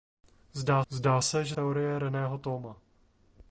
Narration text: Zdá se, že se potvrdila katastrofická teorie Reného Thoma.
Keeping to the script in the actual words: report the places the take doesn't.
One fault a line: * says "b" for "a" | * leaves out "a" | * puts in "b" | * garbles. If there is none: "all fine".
* puts in "zdá"
* leaves out "se potvrdila katastrofická"